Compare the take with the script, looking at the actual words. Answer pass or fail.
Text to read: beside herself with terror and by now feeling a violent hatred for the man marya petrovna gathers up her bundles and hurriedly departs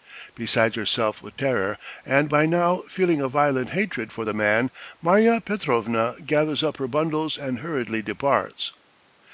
pass